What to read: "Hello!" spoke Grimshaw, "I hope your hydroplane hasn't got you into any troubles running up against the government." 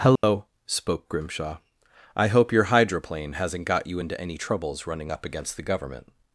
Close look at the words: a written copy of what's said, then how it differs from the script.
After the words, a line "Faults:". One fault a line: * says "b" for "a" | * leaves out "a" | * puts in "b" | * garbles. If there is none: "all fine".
"Hello!" spoke Grimshaw, "I hope your hydroplane hasn't got you into any troubles running up against the government."
Faults:
all fine